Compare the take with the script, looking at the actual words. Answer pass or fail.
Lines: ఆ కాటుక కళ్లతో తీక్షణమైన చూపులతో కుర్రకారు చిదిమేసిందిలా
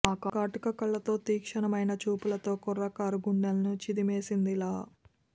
fail